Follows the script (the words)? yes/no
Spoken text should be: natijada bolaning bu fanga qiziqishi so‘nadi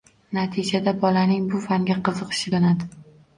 yes